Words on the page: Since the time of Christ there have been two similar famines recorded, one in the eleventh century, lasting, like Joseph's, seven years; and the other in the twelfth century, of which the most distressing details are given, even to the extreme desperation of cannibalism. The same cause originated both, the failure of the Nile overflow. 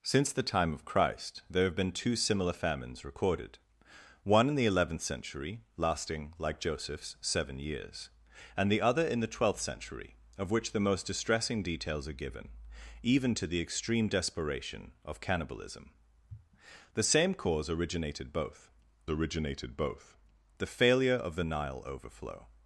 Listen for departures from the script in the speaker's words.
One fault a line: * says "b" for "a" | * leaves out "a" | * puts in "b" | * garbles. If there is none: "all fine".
* puts in "originated both"